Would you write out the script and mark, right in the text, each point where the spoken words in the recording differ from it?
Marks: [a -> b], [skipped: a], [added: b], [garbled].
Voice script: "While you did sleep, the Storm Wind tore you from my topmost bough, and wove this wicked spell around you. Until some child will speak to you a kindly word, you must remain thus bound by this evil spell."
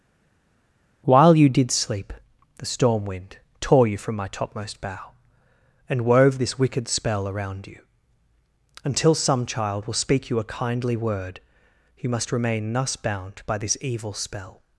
"While you did sleep, the Storm Wind tore you from my topmost bough, and wove this wicked spell around you. Until some child will speak [skipped: to] you a kindly word, you must remain thus bound by this evil spell."